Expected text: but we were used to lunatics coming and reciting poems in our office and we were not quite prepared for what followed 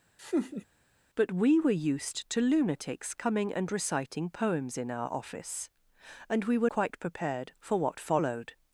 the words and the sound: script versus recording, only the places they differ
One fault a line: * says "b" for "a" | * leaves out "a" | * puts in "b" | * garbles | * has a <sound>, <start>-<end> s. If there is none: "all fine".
* has a laugh, 0.2-0.6 s
* leaves out "not"